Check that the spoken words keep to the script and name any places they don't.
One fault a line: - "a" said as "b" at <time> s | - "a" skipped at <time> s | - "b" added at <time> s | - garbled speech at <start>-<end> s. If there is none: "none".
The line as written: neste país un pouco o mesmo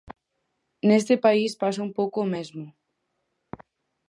- "pasa" added at 1.6 s